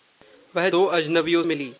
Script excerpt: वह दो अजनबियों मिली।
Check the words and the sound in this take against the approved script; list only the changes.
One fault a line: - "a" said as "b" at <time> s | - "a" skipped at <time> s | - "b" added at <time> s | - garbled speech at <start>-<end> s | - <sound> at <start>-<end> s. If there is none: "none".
none